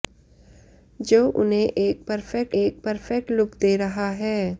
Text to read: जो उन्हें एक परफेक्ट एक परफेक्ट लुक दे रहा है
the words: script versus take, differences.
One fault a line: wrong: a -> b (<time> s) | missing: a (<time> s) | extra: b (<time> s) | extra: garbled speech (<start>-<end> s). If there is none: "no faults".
no faults